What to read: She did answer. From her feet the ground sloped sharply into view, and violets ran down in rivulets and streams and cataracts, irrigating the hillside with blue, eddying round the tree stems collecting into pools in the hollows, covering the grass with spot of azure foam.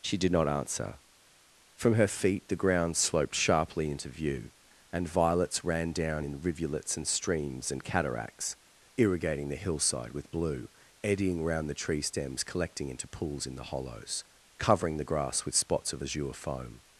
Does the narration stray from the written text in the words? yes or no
yes